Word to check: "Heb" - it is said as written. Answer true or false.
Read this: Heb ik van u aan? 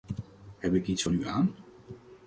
true